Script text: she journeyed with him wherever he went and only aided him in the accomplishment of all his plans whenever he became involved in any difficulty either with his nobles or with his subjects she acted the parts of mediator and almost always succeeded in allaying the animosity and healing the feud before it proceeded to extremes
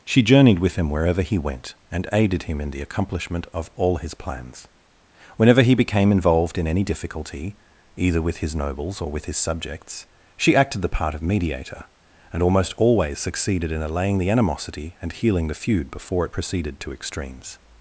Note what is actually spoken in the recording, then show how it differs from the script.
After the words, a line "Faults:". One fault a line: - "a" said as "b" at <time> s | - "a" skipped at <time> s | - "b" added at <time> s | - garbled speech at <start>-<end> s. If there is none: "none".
she journeyed with him wherever he went and aided him in the accomplishment of all his plans whenever he became involved in any difficulty either with his nobles or with his subjects she acted the part of mediator and almost always succeeded in allaying the animosity and healing the feud before it proceeded to extremes
Faults:
- "only" skipped at 2.1 s
- "parts" said as "part" at 10.9 s